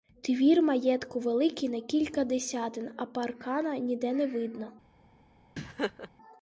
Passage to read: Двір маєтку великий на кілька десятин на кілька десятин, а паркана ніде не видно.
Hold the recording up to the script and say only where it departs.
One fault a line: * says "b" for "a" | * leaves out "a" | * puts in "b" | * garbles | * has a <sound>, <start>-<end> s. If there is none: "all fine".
* leaves out "на кілька десятин"
* has a laugh, 5.6-6.1 s